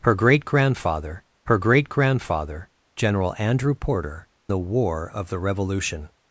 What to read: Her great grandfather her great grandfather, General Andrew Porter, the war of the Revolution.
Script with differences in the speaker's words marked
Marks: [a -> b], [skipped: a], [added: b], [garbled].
Her great grandfather her great grandfather, General Andrew Porter, the war of the Revolution.